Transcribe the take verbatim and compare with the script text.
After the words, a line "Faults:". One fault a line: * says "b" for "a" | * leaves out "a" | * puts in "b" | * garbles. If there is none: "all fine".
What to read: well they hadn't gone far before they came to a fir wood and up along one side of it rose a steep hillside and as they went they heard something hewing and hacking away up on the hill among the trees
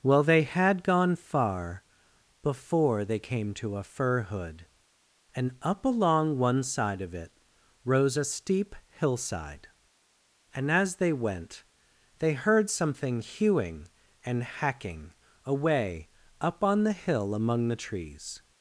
well they had gone far before they came to a fir hood and up along one side of it rose a steep hillside and as they went they heard something hewing and hacking away up on the hill among the trees
Faults:
* says "had" for "hadn't"
* says "hood" for "wood"